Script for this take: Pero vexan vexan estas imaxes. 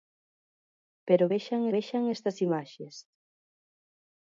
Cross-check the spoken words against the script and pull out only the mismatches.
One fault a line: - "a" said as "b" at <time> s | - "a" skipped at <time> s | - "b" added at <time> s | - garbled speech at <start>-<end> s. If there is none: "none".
none